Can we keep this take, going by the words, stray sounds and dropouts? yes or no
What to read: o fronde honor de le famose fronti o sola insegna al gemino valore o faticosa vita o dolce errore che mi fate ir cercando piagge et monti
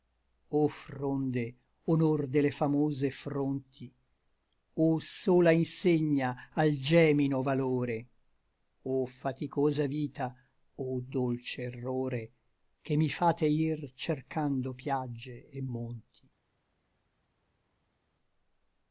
yes